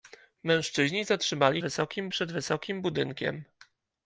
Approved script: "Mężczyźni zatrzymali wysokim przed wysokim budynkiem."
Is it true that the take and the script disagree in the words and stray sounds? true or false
false